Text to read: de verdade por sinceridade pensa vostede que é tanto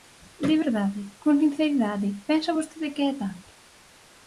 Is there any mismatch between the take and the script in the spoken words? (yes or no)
yes